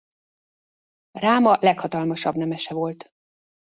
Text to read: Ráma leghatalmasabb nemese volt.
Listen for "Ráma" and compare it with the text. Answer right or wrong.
right